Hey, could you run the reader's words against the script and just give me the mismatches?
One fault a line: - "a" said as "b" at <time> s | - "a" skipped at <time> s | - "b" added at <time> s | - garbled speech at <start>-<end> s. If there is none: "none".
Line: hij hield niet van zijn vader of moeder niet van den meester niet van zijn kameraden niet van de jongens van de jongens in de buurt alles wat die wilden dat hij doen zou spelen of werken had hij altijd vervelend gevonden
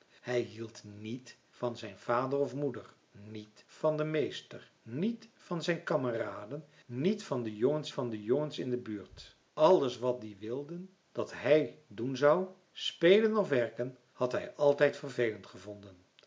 none